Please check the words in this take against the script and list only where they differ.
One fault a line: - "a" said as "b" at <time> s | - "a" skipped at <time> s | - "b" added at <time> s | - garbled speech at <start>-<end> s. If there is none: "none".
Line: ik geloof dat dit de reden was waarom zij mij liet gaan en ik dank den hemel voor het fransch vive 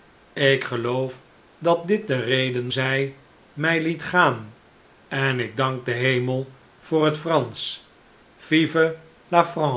- "was waarom" skipped at 2.7 s